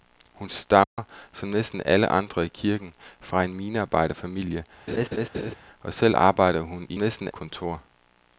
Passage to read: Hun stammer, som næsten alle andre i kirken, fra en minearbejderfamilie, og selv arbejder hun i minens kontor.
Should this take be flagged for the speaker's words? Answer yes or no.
yes